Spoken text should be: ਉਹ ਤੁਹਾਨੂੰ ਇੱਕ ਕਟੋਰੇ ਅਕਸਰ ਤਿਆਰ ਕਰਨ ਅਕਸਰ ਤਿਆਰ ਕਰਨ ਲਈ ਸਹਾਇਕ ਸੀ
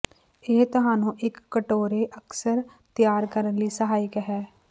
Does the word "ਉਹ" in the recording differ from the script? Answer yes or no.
yes